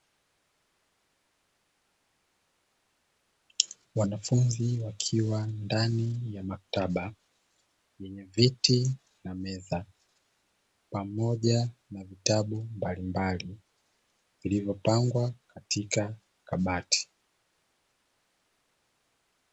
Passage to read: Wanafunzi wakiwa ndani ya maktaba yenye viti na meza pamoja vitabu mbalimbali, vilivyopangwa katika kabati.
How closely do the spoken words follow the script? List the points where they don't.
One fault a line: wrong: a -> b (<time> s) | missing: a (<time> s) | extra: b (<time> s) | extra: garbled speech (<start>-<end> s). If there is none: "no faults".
extra: na (11.9 s)